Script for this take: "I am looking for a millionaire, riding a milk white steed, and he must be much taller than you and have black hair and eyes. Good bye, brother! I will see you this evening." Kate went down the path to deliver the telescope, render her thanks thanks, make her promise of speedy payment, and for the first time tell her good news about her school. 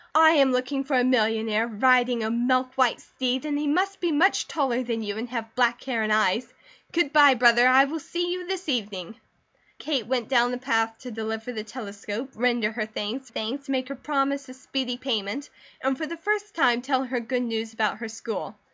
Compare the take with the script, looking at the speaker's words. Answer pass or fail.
pass